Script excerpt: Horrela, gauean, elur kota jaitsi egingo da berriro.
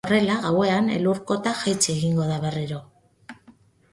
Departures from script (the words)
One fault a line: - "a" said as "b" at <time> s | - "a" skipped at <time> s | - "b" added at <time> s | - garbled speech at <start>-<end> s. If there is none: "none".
none